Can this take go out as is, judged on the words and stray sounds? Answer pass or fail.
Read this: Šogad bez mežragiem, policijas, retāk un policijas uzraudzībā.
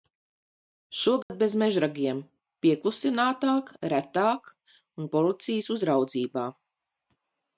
fail